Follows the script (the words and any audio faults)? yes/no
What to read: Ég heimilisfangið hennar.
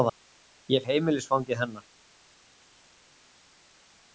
yes